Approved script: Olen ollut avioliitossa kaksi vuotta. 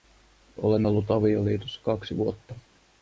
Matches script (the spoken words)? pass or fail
pass